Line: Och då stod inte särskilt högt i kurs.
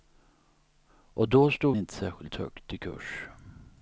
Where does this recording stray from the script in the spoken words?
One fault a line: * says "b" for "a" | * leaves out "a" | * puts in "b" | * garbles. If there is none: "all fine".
all fine